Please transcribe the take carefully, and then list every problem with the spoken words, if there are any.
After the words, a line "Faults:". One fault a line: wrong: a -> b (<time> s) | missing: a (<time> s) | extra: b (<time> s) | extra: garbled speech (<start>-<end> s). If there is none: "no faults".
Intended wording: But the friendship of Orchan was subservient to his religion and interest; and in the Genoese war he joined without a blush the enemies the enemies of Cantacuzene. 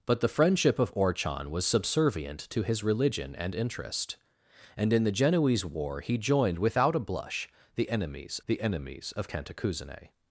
But the friendship of Orchan was subservient to his religion and interest; and in the Genoese war he joined without a blush the enemies the enemies of Cantacuzene.
Faults:
no faults